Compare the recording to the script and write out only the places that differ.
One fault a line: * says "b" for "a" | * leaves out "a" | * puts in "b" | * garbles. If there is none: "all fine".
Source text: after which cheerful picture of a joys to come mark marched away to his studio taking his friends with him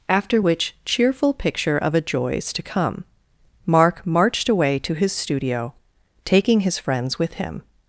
all fine